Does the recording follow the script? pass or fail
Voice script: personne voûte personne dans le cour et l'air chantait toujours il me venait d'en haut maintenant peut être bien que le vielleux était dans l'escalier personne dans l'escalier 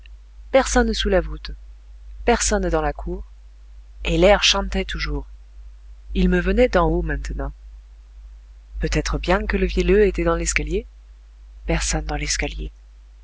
fail